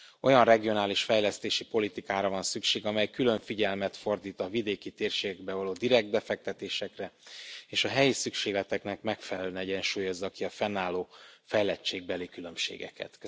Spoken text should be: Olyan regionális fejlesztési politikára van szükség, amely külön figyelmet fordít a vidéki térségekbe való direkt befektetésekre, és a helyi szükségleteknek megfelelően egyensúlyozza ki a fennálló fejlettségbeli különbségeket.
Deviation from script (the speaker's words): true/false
false